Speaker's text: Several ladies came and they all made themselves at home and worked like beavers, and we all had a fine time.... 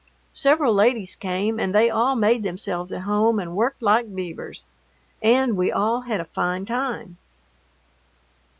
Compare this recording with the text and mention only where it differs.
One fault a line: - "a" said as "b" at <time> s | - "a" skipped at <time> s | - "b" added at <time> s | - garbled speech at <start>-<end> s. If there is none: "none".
none